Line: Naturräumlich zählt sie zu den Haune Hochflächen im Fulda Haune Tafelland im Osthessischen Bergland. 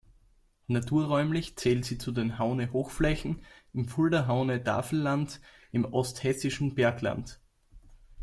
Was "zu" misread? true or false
false